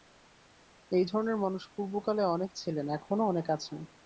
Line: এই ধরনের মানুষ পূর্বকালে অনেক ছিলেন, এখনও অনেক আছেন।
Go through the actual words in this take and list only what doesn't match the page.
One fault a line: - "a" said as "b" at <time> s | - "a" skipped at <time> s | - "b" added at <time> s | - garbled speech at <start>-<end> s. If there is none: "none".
none